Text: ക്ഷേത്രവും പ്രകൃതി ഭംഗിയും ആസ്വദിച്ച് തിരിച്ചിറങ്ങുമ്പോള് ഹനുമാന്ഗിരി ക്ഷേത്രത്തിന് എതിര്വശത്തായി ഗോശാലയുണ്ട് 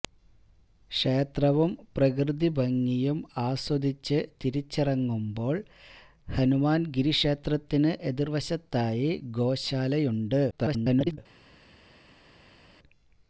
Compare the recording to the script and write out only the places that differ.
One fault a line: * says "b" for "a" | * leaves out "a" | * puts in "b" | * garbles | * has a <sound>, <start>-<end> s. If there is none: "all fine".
* garbles